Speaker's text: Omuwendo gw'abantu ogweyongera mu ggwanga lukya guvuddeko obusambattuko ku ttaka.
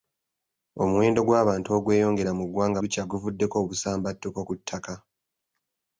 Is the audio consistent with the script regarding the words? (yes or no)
yes